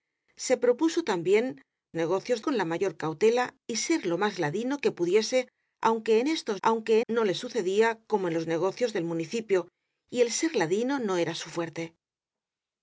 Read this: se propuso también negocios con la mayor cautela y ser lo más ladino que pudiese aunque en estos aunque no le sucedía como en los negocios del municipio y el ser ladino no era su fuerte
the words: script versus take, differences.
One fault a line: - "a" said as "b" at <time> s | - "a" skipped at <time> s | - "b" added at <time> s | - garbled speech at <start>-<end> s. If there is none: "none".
none